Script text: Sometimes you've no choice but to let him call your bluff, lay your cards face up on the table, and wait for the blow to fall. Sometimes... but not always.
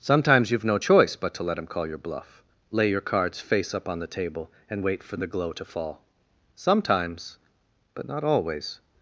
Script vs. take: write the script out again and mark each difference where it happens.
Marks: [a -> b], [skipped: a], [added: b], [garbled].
Sometimes you've no choice but to let him call your bluff, lay your cards face up on the table, and wait for the [blow -> glow] to fall. Sometimes... but not always.